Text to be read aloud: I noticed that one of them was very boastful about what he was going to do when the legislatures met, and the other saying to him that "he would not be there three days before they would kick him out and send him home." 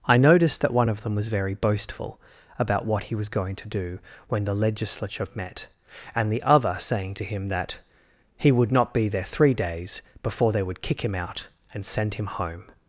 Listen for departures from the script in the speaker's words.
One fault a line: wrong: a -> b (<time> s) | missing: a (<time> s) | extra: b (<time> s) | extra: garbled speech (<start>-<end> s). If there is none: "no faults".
wrong: legislatures -> legislature (4.5 s)